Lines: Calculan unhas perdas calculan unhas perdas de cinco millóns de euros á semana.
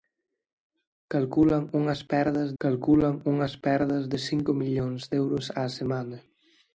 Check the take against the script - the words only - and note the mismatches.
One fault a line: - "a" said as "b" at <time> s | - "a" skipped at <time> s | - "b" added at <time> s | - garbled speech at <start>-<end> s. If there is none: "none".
none